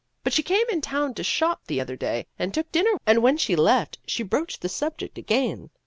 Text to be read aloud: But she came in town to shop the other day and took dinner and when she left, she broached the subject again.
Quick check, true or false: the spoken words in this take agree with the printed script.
true